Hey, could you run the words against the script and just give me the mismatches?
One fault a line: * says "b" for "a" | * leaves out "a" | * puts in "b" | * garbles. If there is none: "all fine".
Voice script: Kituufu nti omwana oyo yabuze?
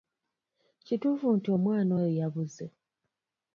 all fine